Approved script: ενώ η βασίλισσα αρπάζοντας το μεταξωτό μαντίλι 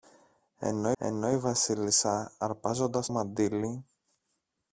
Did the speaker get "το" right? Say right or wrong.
wrong